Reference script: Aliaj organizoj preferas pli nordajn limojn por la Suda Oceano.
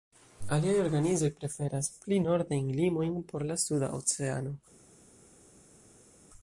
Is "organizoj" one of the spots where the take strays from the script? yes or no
no